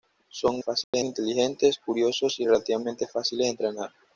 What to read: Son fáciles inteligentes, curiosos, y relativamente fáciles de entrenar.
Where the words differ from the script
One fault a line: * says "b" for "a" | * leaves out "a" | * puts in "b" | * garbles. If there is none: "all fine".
all fine